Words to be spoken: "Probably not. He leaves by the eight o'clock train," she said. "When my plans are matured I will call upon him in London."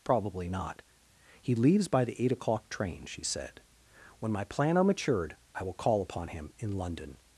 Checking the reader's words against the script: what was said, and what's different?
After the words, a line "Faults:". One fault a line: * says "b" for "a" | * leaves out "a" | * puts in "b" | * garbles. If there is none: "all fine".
"Probably not. He leaves by the eight o'clock train," she said. "When my plan are matured I will call upon him in London."
Faults:
* says "plan" for "plans"